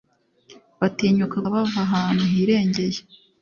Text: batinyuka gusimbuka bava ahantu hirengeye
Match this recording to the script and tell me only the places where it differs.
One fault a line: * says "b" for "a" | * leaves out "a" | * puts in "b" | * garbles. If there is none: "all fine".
* leaves out "gusimbuka"